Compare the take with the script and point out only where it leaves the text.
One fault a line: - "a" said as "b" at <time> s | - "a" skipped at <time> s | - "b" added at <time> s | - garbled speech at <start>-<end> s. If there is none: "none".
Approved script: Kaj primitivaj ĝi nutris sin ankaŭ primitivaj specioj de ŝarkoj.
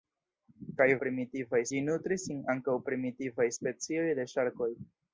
none